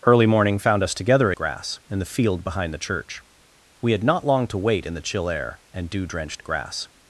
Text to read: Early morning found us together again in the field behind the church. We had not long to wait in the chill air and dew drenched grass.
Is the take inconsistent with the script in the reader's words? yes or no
yes